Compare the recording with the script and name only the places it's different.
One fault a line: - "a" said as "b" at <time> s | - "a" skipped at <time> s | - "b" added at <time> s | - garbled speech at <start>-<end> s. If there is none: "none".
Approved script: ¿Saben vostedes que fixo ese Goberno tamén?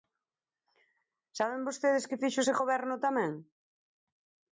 none